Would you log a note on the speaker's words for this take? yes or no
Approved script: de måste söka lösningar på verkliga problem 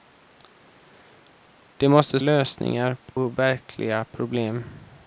yes